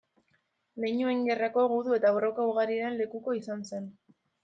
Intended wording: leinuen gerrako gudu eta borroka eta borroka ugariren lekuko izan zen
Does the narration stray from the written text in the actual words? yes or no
yes